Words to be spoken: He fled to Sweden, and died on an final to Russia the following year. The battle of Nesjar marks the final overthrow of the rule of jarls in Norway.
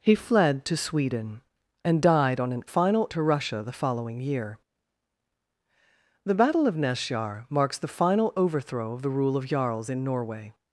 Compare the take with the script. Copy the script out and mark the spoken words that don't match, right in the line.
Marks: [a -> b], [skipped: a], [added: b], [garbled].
He fled to Sweden, and died on an final to Russia the following year. The battle of Nesjar marks the final overthrow of the rule of jarls in Norway.